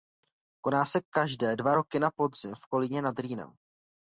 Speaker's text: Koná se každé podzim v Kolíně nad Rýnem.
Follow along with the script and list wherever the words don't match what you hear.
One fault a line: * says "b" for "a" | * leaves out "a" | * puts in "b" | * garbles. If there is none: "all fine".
* puts in "dva roky na"